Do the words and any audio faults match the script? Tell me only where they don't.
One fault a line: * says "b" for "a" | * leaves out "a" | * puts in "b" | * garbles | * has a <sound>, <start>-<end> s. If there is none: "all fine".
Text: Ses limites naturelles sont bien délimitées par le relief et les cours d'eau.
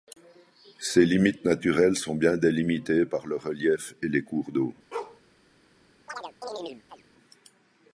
* has a bark, 4.9-5.2 s
* has a chirp, 6.1-7.0 s